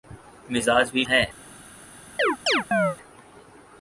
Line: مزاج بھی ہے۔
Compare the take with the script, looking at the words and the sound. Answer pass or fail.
fail